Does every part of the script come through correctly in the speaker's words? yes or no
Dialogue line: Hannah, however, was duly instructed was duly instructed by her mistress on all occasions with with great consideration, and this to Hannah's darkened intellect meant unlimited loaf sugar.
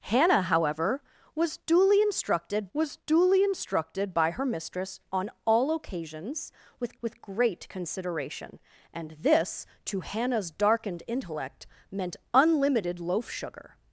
yes